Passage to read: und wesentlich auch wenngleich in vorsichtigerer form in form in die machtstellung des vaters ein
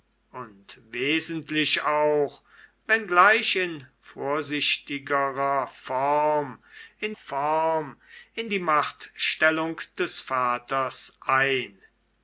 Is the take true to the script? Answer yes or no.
yes